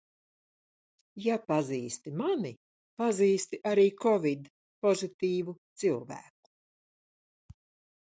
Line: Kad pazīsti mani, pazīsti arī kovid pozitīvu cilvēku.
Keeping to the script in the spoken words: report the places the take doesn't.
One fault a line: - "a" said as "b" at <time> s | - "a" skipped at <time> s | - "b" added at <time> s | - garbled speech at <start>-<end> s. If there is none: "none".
- "Kad" said as "Ja" at 1.2 s